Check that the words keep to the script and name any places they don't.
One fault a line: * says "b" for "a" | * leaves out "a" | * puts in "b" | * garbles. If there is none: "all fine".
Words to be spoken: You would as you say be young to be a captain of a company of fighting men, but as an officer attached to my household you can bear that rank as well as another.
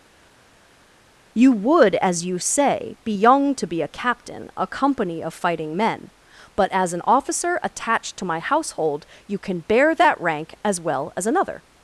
* leaves out "of"